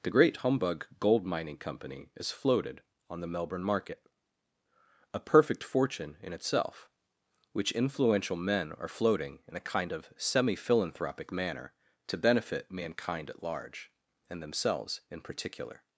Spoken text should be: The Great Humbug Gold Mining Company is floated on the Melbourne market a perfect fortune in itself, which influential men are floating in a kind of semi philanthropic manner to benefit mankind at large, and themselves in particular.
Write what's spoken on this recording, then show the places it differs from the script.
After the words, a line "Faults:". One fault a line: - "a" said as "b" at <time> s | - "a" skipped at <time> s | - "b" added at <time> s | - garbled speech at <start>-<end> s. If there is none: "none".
The Great Humbug Gold Mining Company is floated on the Melbourne market a perfect fortune in itself, which influential men are floating in a kind of semi philanthropic manner to benefit mankind at large, and themselves in particular.
Faults:
none